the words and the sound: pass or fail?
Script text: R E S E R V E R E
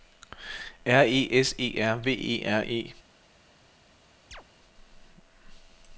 fail